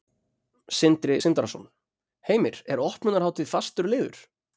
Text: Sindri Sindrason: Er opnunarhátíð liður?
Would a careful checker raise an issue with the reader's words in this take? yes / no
yes